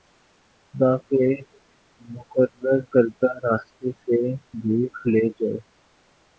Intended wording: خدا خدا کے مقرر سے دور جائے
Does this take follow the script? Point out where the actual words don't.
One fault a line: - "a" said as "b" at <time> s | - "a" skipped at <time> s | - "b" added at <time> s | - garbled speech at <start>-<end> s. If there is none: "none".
- "خدا" skipped at 0.9 s
- "کردہ راستے" added at 2.9 s
- "لے" added at 5.1 s